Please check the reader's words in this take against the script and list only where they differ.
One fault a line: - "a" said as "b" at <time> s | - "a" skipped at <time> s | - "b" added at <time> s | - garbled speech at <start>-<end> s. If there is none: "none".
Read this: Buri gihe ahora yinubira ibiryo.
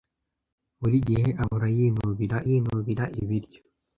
- "yinubira" added at 2.5 s